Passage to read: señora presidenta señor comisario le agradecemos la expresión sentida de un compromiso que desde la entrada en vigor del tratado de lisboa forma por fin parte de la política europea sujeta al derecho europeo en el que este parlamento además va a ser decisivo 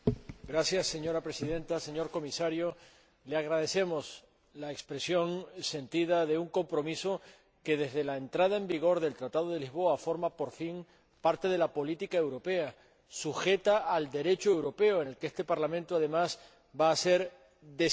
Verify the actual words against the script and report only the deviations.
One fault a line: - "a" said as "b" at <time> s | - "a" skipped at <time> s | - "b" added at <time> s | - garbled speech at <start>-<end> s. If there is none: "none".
none